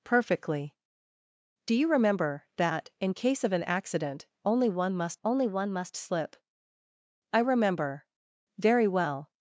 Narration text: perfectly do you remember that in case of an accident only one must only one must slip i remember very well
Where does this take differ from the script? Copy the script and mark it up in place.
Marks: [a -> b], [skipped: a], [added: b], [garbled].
perfectly do you remember that in case of an accident only one must only one must slip i remember very well